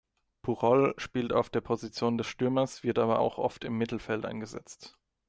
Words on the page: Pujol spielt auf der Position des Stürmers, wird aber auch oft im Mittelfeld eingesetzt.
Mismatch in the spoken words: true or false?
false